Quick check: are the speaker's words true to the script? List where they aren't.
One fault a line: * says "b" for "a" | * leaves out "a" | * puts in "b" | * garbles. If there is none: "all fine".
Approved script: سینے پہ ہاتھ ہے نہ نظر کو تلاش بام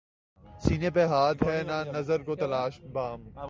all fine